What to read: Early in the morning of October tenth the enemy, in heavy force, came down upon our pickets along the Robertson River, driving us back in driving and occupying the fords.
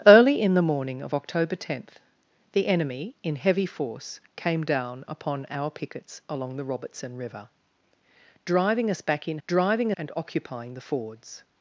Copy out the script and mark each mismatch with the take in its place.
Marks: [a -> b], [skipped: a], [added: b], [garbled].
Early in the morning of October tenth the enemy, in heavy force, came down upon our pickets along the Robertson River, driving us back in driving and occupying the fords.